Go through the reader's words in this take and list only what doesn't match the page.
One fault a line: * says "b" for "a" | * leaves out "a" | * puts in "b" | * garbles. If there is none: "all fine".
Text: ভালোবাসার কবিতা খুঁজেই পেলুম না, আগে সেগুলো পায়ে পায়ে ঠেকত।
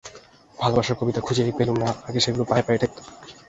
all fine